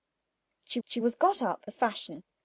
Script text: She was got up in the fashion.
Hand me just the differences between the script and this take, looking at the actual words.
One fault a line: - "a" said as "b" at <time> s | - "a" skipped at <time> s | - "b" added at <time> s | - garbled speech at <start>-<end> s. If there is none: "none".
- "she" added at 0.8 s
- "in" skipped at 1.6 s